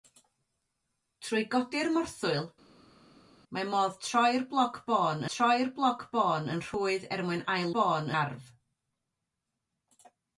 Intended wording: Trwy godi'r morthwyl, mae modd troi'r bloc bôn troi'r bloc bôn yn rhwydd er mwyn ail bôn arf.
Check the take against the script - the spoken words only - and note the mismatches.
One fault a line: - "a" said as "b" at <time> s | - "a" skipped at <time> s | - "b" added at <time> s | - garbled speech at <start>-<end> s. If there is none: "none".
none